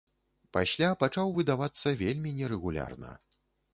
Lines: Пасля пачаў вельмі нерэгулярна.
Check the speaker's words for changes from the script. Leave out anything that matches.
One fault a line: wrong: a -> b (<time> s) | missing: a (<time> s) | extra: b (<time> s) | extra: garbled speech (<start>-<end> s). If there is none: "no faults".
extra: выдавацца (1.4 s)